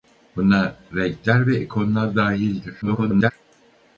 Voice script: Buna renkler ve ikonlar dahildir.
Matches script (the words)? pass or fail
fail